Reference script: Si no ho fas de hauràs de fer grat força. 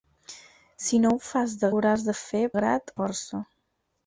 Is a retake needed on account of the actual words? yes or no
no